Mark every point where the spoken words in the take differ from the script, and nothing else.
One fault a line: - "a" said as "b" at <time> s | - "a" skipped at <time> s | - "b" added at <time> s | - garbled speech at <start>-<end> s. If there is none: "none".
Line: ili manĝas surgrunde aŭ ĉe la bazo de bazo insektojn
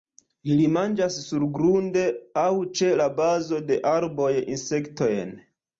- "bazo" said as "arboj" at 4.0 s